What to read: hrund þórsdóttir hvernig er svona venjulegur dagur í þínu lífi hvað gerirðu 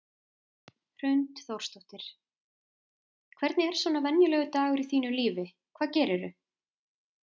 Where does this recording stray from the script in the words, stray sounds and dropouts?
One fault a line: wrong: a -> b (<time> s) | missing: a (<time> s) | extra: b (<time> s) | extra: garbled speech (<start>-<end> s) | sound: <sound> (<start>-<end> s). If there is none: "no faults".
no faults